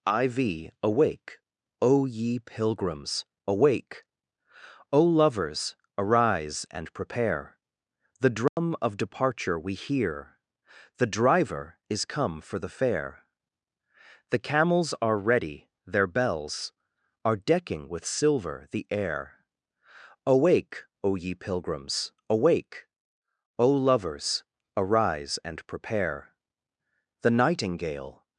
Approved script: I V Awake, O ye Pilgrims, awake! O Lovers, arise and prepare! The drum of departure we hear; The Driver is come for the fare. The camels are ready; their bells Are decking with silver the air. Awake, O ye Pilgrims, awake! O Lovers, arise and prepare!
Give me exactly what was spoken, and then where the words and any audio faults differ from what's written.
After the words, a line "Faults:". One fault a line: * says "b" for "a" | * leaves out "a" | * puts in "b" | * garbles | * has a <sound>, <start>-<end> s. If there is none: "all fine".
I V Awake, O ye Pilgrims, awake! O Lovers, arise and prepare! The drum of departure we hear; The Driver is come for the fare. The camels are ready; their bells Are decking with silver the air. Awake, O ye Pilgrims, awake! O Lovers, arise and prepare! The nightingale
Faults:
* has a dropout, 8.5-8.6 s
* puts in "The nightingale"